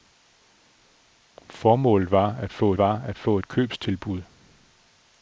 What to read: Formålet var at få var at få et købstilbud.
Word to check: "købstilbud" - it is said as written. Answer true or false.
true